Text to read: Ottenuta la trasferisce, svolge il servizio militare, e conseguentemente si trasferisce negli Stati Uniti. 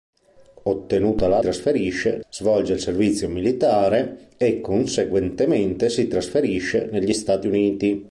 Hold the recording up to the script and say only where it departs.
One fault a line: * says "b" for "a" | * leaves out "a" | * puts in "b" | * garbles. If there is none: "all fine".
all fine